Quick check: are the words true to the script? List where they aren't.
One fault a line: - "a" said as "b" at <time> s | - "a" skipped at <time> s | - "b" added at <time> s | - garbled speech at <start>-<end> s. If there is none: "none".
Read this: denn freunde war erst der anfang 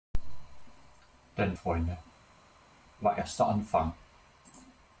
none